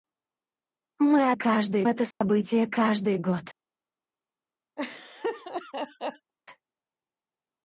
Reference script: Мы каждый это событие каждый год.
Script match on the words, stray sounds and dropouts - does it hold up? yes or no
no